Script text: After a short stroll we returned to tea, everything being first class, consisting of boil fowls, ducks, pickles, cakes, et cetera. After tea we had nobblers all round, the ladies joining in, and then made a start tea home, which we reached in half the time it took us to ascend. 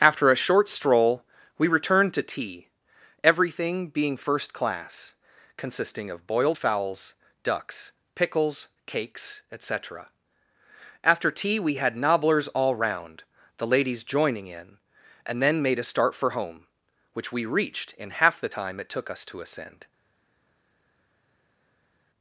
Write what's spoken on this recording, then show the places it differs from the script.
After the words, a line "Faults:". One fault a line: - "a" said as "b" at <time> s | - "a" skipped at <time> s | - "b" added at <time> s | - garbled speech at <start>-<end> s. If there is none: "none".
After a short stroll we returned to tea, everything being first class, consisting of boiled fowls, ducks, pickles, cakes, et cetera. After tea we had nobblers all round, the ladies joining in, and then made a start for home, which we reached in half the time it took us to ascend.
Faults:
- "boil" said as "boiled" at 6.3 s
- "tea" said as "for" at 16.1 s